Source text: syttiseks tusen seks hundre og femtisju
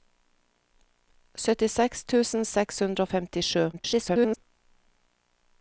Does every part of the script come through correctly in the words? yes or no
no